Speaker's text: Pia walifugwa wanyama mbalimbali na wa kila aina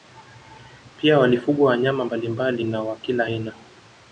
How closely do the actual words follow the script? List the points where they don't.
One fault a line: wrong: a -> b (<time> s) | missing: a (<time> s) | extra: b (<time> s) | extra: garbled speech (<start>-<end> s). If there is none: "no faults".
no faults